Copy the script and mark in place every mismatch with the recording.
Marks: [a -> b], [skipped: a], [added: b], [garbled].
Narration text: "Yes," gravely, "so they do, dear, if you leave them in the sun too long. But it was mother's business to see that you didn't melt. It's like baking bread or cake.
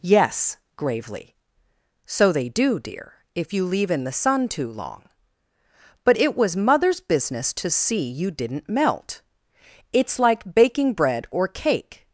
"Yes," gravely, "so they do, dear, if you leave [skipped: them] in the sun too long. But it was mother's business to see [skipped: that] you didn't melt. It's like baking bread or cake.